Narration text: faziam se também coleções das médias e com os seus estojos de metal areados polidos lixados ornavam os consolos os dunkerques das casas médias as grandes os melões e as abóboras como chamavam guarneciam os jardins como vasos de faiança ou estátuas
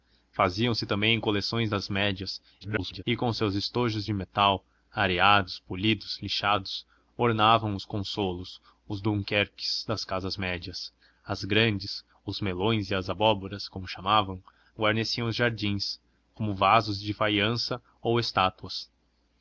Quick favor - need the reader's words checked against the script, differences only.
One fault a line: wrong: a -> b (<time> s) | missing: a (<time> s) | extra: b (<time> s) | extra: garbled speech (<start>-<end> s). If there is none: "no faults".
extra: garbled speech (2.6-3.0 s)